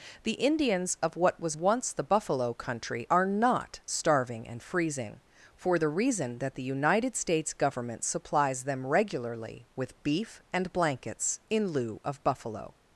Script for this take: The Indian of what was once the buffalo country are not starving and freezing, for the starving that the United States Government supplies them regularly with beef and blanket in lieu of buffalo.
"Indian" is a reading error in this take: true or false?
true